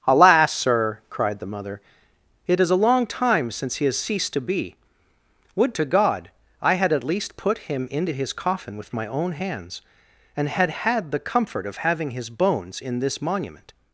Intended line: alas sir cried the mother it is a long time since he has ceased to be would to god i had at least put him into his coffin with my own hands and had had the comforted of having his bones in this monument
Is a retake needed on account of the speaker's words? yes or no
yes